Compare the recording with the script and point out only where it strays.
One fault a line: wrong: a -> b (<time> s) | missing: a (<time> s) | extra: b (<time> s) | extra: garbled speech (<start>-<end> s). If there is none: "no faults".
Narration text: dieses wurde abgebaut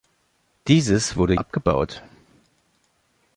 no faults